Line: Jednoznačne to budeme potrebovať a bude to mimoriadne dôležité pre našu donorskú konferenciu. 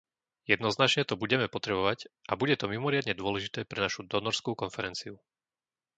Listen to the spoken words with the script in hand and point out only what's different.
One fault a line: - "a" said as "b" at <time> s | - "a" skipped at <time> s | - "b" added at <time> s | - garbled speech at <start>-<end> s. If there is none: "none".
none